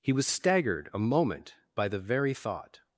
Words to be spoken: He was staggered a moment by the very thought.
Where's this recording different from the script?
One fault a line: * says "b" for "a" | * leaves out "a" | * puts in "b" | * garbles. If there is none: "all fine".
all fine